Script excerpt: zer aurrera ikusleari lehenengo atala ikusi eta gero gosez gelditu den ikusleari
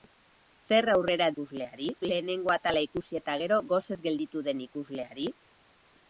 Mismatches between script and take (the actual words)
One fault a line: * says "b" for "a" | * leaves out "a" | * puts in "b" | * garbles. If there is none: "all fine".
all fine